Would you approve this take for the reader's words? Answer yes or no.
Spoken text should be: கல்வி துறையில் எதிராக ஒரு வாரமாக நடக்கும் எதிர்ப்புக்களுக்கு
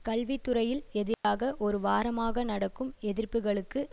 yes